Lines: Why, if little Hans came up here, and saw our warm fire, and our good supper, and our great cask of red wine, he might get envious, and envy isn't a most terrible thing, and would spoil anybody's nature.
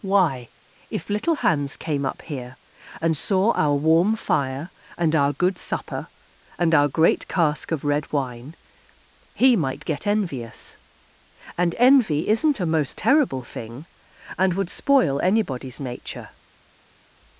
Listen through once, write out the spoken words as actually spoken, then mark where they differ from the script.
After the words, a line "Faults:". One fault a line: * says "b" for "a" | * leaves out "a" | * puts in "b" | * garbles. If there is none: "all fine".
Why, if little Hans came up here, and saw our warm fire, and our good supper, and our great cask of red wine, he might get envious, and envy isn't a most terrible thing, and would spoil anybody's nature.
Faults:
all fine